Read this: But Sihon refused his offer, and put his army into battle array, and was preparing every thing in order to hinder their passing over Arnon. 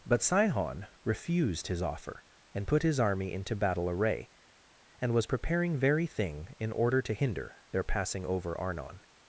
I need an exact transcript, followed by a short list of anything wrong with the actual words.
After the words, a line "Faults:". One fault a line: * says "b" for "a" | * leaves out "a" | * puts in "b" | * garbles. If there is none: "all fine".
But Sihon refused his offer, and put his army into battle array, and was preparing very thing in order to hinder their passing over Arnon.
Faults:
* says "very" for "every"